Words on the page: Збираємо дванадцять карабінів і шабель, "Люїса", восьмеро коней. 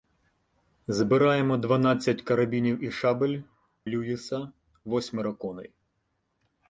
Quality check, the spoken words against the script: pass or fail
pass